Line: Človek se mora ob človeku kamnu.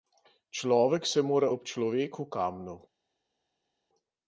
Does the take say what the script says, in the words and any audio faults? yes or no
yes